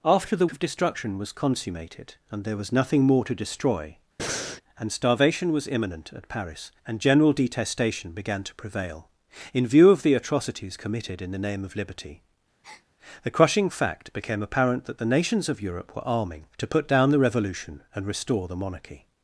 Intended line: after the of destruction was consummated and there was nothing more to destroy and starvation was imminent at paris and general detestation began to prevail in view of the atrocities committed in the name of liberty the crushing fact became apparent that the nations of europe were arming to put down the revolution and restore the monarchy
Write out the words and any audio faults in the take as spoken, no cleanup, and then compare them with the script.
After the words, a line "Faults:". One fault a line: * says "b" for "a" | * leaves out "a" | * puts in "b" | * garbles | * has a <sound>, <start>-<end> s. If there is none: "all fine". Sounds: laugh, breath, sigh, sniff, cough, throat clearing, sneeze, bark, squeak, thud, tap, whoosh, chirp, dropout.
after the of destruction was consummated and there was nothing more to destroy and starvation was imminent at paris and general detestation began to prevail in view of the atrocities committed in the name of liberty the crushing fact became apparent that the nations of europe were arming to put down the revolution and restore the monarchy
Faults:
* has a breath, 4.2-4.6 s
* has a breath, 12.6-12.9 s